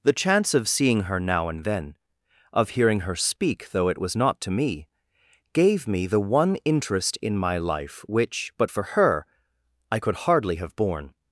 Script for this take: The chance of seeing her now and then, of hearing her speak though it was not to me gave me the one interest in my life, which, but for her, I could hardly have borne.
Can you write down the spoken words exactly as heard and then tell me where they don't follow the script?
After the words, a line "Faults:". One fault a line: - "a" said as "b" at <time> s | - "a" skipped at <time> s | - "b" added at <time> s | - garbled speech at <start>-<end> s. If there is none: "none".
The chance of seeing her now and then, of hearing her speak though it was not to me gave me the one interest in my life, which, but for her, I could hardly have borne.
Faults:
none